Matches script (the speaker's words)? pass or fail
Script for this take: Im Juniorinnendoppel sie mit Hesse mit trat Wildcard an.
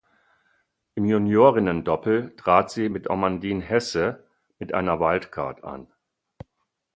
fail